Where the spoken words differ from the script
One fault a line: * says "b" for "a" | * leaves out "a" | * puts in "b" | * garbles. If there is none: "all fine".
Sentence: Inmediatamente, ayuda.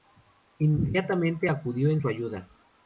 * puts in "acudió en su"